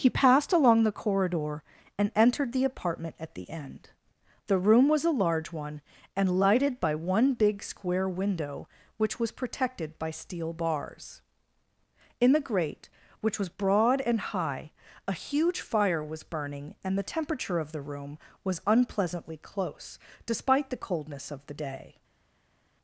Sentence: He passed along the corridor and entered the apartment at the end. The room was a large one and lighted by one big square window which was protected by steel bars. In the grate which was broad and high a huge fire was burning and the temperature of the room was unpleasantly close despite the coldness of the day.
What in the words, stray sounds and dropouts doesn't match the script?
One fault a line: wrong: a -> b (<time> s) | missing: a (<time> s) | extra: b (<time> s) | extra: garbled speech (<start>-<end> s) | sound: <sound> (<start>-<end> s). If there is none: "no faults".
no faults